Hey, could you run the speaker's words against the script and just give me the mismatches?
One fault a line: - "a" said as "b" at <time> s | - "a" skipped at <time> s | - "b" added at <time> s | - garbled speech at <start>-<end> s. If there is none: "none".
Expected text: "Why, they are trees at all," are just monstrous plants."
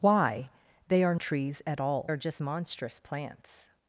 none